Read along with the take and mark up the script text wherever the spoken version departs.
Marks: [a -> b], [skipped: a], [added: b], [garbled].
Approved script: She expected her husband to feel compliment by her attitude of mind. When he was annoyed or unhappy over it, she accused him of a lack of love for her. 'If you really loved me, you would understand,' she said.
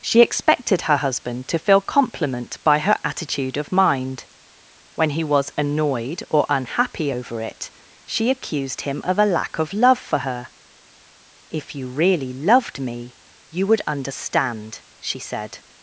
She expected her husband to feel compliment by her attitude of mind. When he was annoyed or unhappy over it, she accused him of a lack of love for her. 'If you really loved me, you would understand,' she said.